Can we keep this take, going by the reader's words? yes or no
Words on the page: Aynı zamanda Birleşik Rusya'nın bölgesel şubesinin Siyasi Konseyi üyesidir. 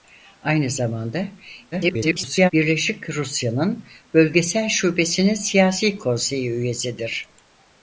no